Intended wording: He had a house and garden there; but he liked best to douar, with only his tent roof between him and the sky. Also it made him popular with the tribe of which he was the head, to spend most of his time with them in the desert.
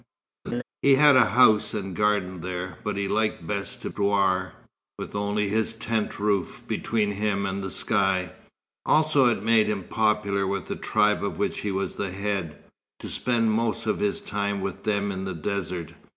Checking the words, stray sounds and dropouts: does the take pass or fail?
fail